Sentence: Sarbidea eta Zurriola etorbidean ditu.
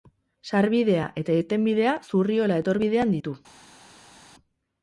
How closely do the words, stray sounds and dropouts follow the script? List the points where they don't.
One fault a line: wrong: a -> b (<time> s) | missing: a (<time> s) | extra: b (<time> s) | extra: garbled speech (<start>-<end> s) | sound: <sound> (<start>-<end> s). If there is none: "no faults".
extra: irtenbidea (1.4 s)